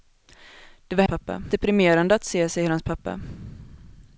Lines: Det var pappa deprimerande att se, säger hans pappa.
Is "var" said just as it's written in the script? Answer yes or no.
yes